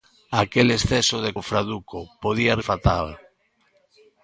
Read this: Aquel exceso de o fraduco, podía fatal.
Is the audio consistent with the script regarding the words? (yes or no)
yes